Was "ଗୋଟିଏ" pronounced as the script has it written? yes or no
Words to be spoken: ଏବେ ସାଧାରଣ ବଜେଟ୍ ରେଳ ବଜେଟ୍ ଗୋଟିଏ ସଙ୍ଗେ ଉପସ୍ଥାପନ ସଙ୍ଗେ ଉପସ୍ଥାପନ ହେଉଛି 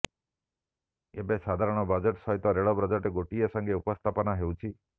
yes